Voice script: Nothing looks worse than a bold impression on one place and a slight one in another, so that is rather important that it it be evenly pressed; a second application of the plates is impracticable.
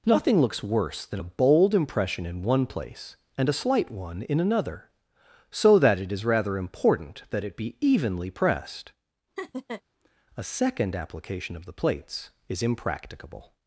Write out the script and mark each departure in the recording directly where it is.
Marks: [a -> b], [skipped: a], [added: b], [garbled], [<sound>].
Nothing looks worse than a bold impression [on -> in] one place and a slight one in another, so that [added: it] is rather important that it [skipped: it] be evenly pressed; [laugh] a second application of the plates is impracticable.